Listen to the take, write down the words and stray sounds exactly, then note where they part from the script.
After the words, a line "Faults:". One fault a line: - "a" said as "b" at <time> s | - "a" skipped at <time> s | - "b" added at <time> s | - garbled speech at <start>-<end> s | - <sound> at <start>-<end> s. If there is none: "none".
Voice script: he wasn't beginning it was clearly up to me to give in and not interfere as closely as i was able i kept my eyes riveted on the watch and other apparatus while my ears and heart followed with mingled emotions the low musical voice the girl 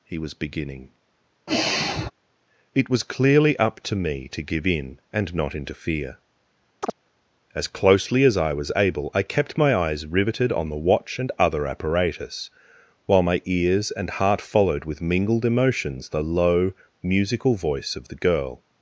he was beginning it was clearly up to me to give in and not interfere as closely as i was able i kept my eyes riveted on the watch and other apparatus while my ears and heart followed with mingled emotions the low musical voice of the girl
Faults:
- "wasn't" said as "was" at 0.2 s
- sigh at 1.5-2.1 s
- chirp at 6.8-6.9 s
- "of" added at 17.9 s